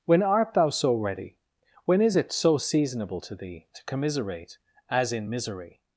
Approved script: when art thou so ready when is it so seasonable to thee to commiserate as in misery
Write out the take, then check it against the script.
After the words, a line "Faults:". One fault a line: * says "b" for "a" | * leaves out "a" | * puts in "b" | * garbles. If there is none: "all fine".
when art thou so ready when is it so seasonable to thee to commiserate as in misery
Faults:
all fine